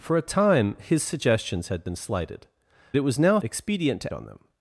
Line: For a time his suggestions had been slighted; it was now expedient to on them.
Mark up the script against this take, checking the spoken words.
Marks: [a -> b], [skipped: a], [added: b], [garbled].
For a time his suggestions had been slighted; it was now expedient to on them.